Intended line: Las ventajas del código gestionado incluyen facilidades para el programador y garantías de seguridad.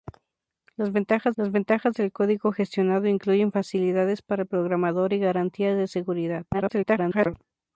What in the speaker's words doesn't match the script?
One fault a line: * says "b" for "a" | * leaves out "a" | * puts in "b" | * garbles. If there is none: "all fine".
* puts in "las ventajas"
* garbles